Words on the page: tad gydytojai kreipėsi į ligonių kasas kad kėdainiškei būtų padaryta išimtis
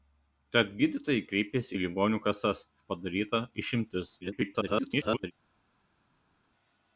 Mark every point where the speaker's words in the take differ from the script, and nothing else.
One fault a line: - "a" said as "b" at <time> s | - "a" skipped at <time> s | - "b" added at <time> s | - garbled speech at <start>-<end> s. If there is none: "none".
- "kad kėdainiškei būtų" skipped at 2.6 s
- garbled speech at 4.2-5.3 s